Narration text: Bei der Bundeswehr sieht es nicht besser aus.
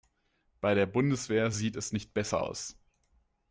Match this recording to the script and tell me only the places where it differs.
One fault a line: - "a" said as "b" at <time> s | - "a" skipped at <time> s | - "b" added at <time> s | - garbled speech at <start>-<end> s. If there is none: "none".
none